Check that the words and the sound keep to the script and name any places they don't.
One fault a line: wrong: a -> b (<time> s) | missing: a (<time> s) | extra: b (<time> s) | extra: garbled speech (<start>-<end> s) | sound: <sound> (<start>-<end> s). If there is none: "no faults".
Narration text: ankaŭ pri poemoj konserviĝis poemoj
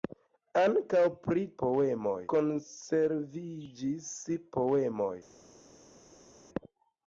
no faults